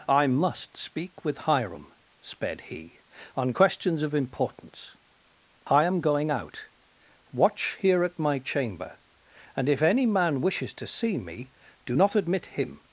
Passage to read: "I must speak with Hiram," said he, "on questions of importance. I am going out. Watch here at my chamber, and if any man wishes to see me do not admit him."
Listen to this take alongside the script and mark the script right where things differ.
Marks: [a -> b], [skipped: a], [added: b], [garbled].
"I must speak with Hiram," [said -> sped] he, "on questions of importance. I am going out. Watch here at my chamber, and if any man wishes to see me do not admit him."